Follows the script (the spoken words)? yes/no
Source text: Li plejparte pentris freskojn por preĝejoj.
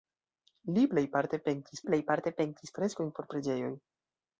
no